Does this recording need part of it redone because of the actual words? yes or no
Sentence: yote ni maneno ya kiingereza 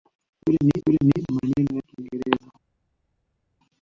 yes